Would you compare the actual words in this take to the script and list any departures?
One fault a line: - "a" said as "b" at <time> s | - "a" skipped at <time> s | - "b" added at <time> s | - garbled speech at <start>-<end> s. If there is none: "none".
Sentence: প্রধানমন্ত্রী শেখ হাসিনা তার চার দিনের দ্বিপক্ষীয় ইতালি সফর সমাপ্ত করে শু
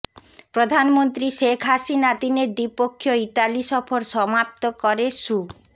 - "তার চার" skipped at 2.1 s